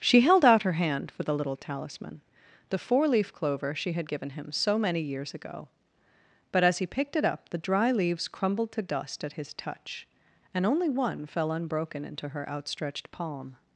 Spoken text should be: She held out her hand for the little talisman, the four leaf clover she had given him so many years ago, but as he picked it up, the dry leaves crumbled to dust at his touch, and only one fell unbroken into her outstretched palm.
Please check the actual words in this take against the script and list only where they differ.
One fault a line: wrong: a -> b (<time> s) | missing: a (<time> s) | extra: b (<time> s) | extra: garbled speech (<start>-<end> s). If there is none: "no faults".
no faults